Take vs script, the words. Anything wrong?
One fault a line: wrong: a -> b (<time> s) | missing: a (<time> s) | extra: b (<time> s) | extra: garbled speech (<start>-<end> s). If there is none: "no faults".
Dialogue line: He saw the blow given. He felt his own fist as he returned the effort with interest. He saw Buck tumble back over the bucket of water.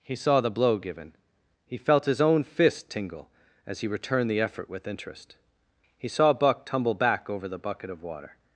extra: tingle (2.9 s)